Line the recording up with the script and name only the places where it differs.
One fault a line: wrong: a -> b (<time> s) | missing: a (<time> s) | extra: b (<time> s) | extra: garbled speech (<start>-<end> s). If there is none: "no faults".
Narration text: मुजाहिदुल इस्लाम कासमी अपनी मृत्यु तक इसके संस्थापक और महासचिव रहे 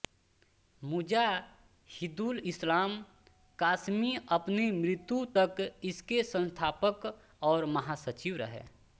no faults